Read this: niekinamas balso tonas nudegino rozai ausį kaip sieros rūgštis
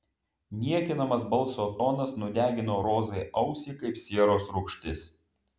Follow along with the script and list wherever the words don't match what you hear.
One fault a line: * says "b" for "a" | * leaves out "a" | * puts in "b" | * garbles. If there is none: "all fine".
all fine